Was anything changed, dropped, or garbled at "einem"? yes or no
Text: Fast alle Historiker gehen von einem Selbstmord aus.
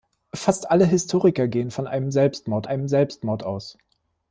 no